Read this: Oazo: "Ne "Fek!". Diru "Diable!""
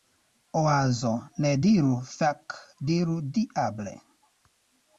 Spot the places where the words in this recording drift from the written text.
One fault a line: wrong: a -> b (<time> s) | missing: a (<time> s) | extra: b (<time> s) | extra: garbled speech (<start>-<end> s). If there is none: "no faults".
extra: diru (1.6 s)